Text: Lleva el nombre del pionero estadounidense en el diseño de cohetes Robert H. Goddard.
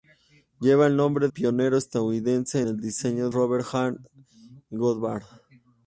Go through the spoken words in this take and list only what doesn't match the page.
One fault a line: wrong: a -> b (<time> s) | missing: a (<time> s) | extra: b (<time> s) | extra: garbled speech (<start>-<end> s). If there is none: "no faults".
missing: del (1.3 s)
missing: en (2.6 s)
missing: de cohetes (3.3 s)